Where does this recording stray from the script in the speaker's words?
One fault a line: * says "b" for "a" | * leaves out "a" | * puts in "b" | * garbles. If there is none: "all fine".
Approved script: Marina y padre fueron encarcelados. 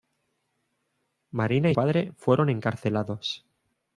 all fine